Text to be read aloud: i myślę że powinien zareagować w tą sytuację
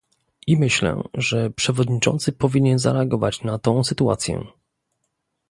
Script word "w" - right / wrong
wrong